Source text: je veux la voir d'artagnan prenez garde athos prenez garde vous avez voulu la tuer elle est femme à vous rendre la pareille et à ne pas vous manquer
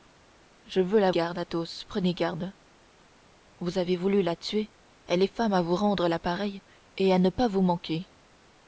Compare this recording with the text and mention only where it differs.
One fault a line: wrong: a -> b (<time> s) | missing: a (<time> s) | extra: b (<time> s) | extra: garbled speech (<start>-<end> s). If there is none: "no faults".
missing: voir d'artagnan prenez (1.1 s)